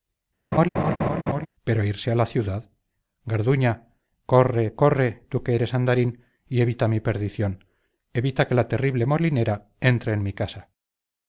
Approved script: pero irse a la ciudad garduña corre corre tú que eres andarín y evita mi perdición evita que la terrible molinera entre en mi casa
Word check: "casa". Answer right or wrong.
right